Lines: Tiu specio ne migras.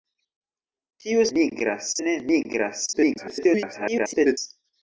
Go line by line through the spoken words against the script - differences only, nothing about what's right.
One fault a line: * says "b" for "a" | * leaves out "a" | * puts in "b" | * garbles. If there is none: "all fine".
* says "migras" for "specio"
* garbles